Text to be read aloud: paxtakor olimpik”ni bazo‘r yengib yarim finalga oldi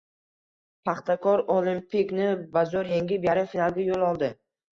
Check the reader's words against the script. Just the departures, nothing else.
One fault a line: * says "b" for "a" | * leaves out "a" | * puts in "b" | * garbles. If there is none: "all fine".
* puts in "yo‘l"